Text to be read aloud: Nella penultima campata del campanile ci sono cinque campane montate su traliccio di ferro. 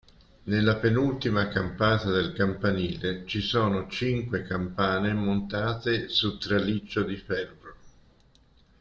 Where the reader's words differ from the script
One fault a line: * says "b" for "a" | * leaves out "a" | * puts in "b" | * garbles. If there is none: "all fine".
all fine